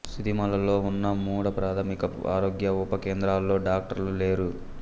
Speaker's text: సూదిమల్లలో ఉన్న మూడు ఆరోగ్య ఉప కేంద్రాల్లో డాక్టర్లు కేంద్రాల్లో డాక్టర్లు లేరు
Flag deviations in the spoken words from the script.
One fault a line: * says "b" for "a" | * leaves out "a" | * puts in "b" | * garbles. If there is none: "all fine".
* puts in "ప్రాథమిక"
* leaves out "కేంద్రాల్లో డాక్టర్లు"